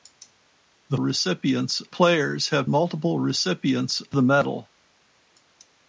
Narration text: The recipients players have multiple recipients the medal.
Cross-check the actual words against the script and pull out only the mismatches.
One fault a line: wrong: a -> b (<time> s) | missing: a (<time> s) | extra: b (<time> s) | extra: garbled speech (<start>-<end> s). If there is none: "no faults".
no faults